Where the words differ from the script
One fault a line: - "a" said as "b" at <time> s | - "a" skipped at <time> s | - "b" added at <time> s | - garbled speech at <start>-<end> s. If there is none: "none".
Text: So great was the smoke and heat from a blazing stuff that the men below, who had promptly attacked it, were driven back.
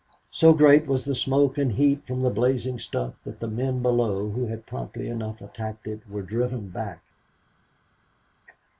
- "a" said as "the" at 2.2 s
- "enough" added at 5.1 s